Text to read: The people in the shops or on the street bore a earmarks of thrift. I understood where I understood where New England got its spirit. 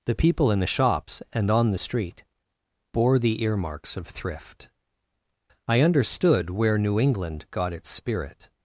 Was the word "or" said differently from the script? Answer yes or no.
yes